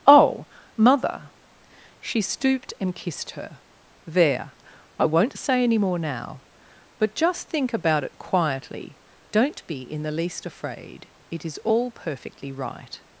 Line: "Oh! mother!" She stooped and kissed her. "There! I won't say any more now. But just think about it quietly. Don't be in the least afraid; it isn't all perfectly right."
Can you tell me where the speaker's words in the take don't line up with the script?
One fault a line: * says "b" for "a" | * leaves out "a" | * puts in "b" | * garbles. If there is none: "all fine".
* says "is" for "isn't"